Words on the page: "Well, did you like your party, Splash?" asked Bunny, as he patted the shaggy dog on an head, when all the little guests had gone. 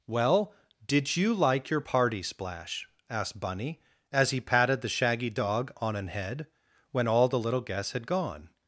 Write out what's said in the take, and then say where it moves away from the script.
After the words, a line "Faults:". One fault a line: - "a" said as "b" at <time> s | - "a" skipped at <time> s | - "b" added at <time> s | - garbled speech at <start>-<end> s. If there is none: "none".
"Well, did you like your party, Splash?" asked Bunny, as he patted the shaggy dog on an head, when all the little guests had gone.
Faults:
none